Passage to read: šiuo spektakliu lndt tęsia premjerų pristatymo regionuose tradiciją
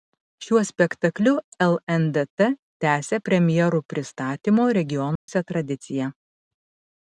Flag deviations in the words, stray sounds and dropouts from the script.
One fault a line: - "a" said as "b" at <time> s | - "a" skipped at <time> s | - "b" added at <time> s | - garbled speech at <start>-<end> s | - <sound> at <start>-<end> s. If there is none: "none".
- dropout at 5.2-5.3 s